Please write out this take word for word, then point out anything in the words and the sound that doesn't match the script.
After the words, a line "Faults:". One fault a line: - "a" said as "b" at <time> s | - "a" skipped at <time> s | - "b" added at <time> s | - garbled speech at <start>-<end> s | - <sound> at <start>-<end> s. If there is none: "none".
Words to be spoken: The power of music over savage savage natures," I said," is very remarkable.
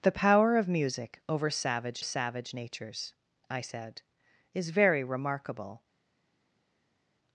The power of music over savage savage natures," I said," is very remarkable.
Faults:
none